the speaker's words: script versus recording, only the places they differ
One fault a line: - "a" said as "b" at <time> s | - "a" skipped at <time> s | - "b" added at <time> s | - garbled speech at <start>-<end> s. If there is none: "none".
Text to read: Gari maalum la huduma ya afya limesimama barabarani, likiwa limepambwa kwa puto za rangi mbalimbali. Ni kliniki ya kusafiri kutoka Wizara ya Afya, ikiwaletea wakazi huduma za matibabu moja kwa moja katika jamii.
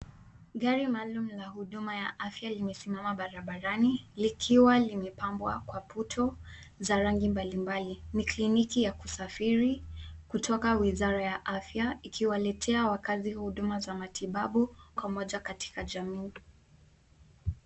- "moja" skipped at 14.8 s